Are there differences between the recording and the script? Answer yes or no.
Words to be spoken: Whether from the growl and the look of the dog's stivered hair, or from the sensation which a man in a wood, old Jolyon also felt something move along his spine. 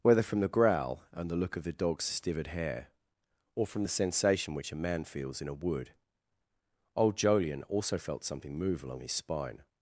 yes